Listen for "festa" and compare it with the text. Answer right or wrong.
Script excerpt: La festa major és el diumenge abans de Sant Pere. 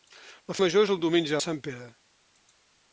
wrong